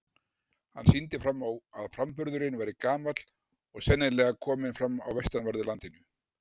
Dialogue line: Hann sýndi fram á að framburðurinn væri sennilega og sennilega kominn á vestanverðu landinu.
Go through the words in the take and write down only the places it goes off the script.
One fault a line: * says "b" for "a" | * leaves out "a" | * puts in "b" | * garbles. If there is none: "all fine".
* says "gamall" for "sennilega"
* puts in "fram"